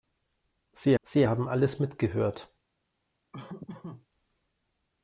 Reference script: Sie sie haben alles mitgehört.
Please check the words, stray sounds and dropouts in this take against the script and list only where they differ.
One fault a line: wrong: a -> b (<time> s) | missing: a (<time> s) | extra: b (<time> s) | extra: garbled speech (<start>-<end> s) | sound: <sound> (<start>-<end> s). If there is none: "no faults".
sound: laugh (3.3-4.1 s)